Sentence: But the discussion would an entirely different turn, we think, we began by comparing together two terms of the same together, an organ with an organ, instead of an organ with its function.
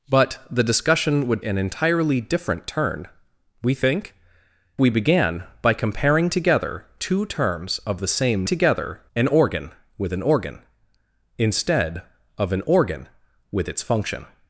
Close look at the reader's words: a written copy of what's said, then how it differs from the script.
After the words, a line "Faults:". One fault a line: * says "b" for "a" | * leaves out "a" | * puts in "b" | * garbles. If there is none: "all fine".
But the discussion would an entirely different turn, we think, we began by comparing together two terms of the same together, an organ with an organ, instead of an organ with its function.
Faults:
all fine